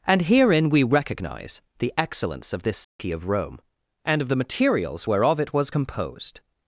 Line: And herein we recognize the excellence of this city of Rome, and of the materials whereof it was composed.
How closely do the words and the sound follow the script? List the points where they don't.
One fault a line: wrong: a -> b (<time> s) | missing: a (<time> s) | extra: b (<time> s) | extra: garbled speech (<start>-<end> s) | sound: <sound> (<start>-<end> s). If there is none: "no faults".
sound: dropout (2.8-3.0 s)